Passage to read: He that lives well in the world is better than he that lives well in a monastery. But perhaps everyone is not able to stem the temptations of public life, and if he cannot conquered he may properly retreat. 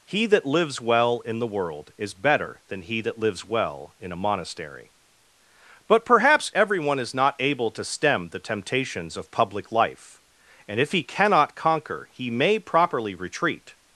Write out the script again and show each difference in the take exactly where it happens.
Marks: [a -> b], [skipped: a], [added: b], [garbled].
He that lives well in the world is better than he that lives well in a monastery. But perhaps everyone is not able to stem the temptations of public life, and if he cannot [conquered -> conquer] he may properly retreat.